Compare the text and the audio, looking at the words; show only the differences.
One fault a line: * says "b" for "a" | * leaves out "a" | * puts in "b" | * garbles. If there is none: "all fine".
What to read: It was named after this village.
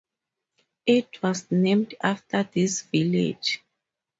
all fine